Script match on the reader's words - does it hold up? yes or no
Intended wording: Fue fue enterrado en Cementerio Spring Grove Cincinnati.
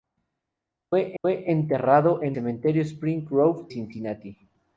yes